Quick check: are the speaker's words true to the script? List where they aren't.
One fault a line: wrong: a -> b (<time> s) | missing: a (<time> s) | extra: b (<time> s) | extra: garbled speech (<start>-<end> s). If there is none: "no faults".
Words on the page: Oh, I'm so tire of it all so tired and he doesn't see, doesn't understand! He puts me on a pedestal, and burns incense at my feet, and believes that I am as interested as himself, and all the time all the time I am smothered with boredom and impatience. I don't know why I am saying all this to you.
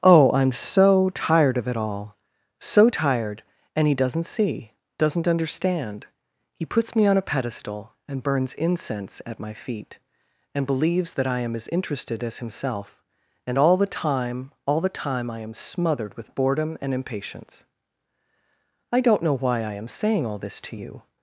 wrong: tire -> tired (1.1 s)